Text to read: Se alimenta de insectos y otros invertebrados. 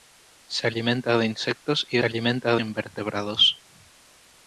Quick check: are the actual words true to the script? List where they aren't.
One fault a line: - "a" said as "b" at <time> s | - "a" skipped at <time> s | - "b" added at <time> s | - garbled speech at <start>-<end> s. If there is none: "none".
- "otros" said as "alimenta" at 2.0 s